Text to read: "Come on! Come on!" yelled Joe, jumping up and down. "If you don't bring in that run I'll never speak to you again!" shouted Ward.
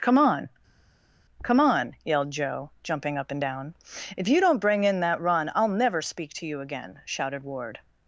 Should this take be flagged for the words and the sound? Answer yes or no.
no